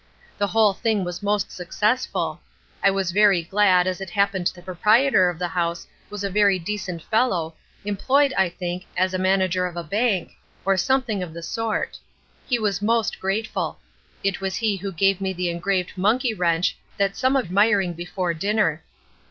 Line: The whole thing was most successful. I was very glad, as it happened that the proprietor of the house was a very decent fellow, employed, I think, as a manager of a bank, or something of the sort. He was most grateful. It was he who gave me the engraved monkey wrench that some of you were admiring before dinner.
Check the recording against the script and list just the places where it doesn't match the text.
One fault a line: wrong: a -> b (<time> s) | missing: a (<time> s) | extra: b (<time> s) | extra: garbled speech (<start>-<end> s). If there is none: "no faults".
missing: that (4.5 s)
missing: you were (17.5 s)